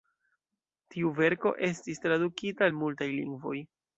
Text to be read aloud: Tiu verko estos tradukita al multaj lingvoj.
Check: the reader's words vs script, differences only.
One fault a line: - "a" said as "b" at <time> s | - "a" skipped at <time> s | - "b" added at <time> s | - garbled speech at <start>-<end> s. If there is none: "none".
- "estos" said as "estis" at 1.7 s